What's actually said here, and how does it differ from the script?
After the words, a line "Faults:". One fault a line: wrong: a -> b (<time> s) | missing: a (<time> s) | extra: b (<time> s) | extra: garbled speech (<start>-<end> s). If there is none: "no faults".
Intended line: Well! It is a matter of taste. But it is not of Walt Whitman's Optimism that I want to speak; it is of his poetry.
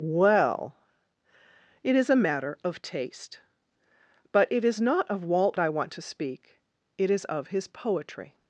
Well! It is a matter of taste. But it is not of Walt I want to speak; it is of his poetry.
Faults:
missing: Whitman's Optimism that (5.6 s)